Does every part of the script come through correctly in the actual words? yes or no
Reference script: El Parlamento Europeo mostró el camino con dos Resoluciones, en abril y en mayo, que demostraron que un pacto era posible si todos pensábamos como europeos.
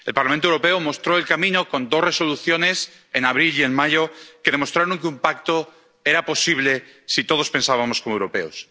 yes